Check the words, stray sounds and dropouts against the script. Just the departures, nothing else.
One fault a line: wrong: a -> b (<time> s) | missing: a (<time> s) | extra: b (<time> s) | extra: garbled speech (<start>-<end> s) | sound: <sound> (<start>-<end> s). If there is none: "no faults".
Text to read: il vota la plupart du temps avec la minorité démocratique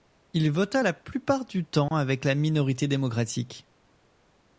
sound: dropout (1.9-1.9 s)